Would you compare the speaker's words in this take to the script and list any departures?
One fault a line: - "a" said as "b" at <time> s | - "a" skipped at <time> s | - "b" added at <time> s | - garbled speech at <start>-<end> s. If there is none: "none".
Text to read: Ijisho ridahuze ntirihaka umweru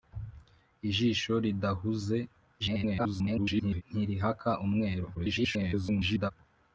- garbled speech at 2.6-3.8 s
- garbled speech at 5.1-6.3 s